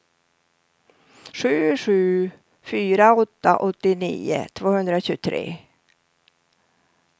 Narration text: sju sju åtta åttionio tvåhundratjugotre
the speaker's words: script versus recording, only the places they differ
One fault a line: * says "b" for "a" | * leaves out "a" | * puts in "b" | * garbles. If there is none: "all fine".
* puts in "fyra"